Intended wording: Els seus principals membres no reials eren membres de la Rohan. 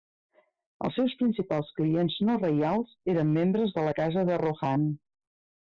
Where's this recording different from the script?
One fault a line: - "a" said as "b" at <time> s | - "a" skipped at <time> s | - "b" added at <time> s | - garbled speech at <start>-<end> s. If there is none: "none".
- "membres" said as "clients" at 1.8 s
- "casa de" added at 4.0 s